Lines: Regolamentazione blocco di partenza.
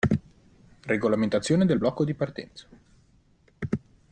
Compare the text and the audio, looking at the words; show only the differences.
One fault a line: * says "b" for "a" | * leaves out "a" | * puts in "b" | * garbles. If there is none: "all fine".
* puts in "del"